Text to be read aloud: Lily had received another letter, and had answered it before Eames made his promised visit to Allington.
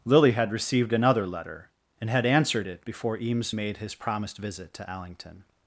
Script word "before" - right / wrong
right